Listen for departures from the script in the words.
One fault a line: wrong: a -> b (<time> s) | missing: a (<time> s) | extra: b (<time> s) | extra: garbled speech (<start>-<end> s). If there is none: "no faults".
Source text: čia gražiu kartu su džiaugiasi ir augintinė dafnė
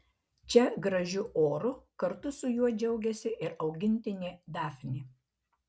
extra: oru (1.4 s)
extra: juo (2.5 s)